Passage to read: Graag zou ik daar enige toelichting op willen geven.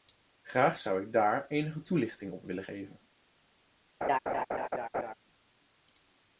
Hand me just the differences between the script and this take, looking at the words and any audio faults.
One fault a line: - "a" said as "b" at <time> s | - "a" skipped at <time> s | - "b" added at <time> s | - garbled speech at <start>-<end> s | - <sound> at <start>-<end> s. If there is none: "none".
- laugh at 4.0-5.1 s